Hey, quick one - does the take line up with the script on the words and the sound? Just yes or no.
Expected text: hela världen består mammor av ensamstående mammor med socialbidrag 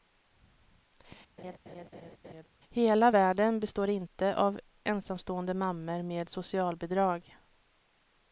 no